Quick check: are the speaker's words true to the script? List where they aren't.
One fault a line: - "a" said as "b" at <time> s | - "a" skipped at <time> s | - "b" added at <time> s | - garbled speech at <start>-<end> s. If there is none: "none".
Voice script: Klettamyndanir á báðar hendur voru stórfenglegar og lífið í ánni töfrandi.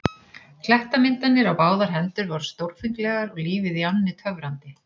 none